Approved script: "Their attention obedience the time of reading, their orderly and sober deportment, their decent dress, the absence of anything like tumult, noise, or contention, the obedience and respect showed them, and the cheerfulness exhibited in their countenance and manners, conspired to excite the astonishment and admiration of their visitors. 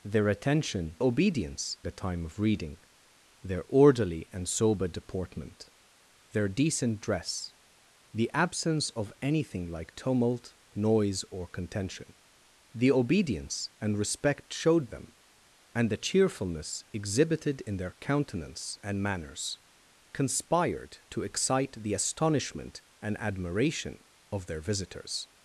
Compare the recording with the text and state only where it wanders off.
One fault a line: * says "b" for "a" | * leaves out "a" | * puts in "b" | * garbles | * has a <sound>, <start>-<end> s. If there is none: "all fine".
all fine